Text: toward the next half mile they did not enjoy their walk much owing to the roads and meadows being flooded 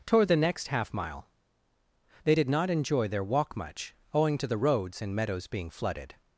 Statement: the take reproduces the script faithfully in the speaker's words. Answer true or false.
true